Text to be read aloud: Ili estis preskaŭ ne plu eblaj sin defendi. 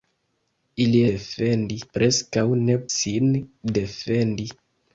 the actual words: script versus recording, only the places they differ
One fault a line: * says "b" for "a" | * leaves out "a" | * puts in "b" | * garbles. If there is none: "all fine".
* says "defendi" for "estis"
* leaves out "plu eblaj"